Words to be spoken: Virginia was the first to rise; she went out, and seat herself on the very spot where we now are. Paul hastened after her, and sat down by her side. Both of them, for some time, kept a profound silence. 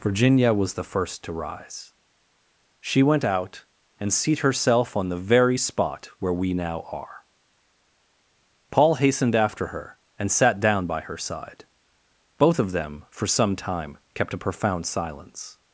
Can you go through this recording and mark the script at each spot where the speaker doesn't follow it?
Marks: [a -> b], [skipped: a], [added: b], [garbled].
Virginia was the first to rise; she went out, and seat herself on the very spot where we now are. Paul hastened after her, and sat down by her side. Both of them, for some time, kept a profound silence.